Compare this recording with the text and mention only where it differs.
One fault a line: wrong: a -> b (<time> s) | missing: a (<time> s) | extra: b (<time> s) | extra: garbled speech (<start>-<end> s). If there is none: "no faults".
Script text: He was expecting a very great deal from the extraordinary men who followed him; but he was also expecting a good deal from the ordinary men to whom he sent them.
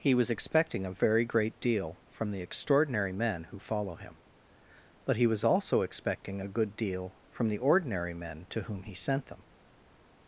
wrong: followed -> follow (3.6 s)